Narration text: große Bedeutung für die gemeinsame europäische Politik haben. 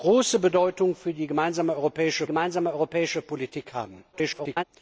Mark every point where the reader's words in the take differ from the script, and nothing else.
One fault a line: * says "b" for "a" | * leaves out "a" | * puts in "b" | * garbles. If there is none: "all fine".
* puts in "gemeinsame europäische"
* garbles